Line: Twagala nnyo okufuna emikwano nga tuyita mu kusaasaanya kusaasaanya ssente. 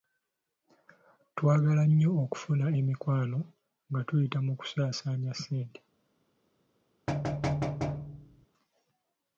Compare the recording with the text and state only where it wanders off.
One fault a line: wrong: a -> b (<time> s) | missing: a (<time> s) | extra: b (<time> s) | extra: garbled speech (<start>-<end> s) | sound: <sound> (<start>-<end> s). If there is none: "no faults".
missing: kusaasaanya (5.3 s)
sound: thud (7.1-8.5 s)